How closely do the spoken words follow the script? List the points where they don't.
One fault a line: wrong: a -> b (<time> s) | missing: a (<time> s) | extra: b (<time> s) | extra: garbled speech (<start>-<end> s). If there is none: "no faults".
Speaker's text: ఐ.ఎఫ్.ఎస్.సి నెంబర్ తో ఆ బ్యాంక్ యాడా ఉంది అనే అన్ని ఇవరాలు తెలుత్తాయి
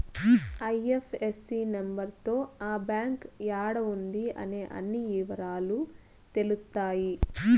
no faults